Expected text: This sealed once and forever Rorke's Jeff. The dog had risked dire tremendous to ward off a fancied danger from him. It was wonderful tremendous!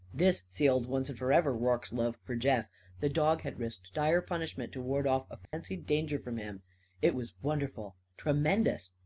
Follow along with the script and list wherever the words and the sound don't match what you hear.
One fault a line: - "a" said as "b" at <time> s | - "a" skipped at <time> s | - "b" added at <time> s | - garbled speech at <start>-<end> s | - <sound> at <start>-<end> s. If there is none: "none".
- "love for" added at 1.9 s
- "tremendous" said as "punishment" at 4.2 s
- dropout at 5.5-5.5 s